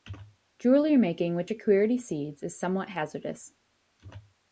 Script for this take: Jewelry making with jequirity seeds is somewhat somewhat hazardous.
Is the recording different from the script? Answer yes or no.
yes